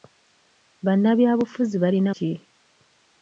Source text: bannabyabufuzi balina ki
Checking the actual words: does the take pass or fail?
pass